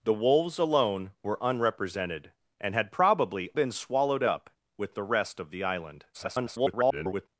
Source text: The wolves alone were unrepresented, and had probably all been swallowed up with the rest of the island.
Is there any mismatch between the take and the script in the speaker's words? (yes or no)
yes